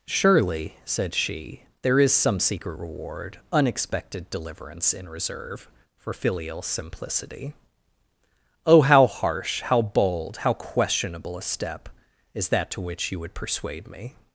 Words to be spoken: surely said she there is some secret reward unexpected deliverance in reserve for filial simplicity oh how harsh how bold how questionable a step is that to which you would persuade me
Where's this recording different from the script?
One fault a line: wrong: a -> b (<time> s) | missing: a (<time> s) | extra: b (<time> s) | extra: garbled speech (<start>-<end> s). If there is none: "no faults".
no faults